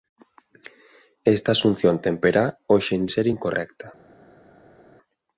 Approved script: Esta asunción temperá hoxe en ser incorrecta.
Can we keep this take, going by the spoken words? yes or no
yes